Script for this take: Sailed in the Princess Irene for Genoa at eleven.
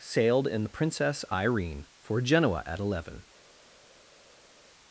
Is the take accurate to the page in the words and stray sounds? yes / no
yes